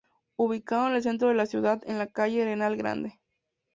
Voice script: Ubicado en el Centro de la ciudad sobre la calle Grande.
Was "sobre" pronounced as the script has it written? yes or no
no